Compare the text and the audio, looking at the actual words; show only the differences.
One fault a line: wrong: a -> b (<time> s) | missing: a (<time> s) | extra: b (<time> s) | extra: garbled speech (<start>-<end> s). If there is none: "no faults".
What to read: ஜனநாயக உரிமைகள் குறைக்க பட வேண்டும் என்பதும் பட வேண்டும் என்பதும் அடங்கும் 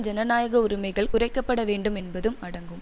missing: பட வேண்டும் என்பதும் (2.4 s)